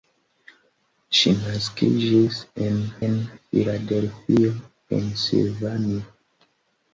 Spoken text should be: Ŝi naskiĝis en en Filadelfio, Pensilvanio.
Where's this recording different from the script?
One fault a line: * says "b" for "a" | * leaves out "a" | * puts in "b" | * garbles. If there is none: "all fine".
all fine